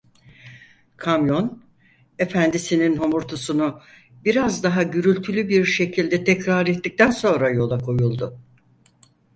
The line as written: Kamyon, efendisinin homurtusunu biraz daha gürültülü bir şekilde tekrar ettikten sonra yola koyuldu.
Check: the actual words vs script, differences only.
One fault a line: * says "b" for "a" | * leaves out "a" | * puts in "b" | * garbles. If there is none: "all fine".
all fine